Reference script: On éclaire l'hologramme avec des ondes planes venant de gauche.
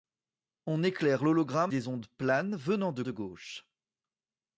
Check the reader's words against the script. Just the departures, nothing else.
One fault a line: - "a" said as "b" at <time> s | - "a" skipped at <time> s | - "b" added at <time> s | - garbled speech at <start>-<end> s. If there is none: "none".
- "avec" skipped at 1.7 s
- "de" added at 3.0 s